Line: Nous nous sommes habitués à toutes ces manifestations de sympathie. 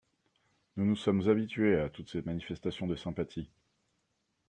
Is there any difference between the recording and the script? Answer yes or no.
no